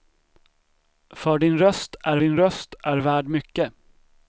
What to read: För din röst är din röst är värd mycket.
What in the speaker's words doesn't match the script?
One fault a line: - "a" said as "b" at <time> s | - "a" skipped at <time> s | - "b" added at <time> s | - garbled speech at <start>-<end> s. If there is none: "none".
none